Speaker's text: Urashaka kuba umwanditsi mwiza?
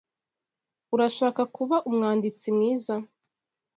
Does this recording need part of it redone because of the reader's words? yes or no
no